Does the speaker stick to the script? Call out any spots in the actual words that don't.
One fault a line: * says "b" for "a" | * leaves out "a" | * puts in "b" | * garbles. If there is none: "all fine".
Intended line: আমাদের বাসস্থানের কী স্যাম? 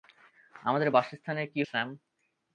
all fine